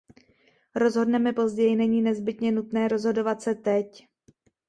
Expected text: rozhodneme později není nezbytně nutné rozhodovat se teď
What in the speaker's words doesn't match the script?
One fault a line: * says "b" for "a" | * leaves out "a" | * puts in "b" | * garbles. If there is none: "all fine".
all fine